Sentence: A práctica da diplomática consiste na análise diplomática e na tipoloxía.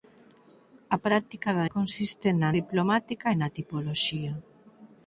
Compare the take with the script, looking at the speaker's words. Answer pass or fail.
fail